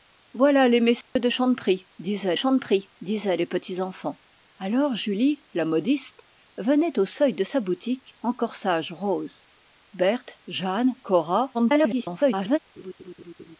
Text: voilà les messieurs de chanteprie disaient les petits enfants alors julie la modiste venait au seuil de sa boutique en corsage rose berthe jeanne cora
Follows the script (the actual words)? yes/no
no